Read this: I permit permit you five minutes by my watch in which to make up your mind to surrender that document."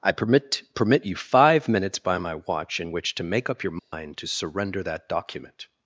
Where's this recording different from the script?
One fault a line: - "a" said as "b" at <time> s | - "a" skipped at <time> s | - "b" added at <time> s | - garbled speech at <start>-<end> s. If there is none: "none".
none